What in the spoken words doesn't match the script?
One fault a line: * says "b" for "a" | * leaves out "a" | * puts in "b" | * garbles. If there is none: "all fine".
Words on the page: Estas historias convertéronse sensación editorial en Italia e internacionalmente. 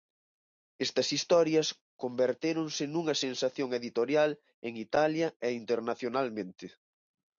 * puts in "nunha"